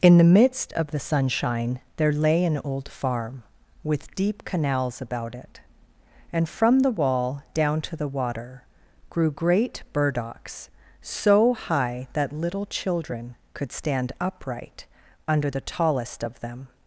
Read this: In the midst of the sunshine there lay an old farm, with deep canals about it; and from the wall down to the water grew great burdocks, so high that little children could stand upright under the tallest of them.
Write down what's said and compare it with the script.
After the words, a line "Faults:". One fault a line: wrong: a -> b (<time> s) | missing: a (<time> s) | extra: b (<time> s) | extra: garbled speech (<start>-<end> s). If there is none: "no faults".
In the midst of the sunshine there lay an old farm, with deep canals about it; and from the wall down to the water grew great burdocks, so high that little children could stand upright under the tallest of them.
Faults:
no faults